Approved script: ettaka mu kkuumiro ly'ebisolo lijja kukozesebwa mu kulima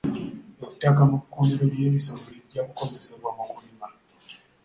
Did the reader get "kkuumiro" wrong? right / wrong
right